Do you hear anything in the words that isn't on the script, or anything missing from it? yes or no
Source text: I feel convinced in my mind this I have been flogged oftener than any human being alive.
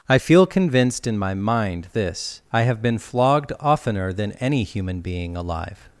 no